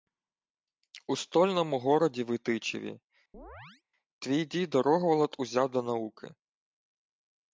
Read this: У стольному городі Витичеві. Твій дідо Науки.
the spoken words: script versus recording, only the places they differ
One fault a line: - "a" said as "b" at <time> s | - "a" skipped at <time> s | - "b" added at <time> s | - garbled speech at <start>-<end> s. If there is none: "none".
- "Рогволод узяв до" added at 4.8 s